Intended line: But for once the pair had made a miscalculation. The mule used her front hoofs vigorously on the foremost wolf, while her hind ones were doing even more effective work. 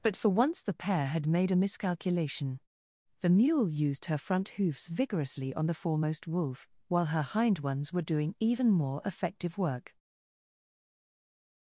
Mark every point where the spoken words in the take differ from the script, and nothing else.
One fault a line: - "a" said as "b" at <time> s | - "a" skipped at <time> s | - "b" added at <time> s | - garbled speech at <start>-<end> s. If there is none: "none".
none